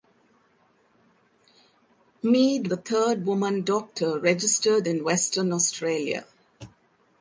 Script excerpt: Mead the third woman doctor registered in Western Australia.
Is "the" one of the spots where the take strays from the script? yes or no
no